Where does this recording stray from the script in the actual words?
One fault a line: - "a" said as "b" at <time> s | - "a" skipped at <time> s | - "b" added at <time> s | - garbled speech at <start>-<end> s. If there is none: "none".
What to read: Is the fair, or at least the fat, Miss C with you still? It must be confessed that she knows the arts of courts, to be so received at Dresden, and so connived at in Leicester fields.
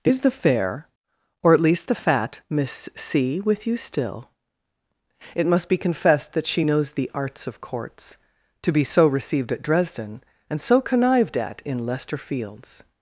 none